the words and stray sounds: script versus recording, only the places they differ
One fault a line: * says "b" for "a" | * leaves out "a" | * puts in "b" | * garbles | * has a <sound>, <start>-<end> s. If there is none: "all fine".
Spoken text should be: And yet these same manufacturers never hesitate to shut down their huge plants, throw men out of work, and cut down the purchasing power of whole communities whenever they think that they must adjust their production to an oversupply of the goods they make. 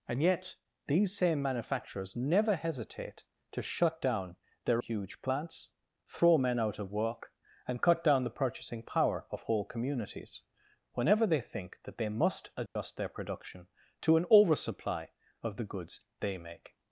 * has a dropout, 12.7-12.8 s